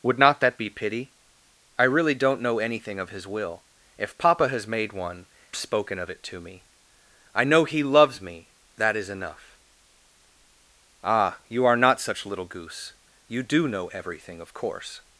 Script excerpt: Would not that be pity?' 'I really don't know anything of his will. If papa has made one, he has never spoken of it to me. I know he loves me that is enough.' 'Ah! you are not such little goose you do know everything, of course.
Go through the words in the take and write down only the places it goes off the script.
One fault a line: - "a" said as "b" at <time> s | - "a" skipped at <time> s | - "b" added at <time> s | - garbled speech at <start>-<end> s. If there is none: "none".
- "he has never" skipped at 5.3 s